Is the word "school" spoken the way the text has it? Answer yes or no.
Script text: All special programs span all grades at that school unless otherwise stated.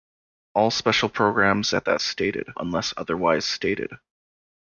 no